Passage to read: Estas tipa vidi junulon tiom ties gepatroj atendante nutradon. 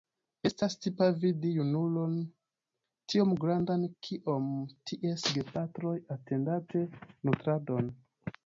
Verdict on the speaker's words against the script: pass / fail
fail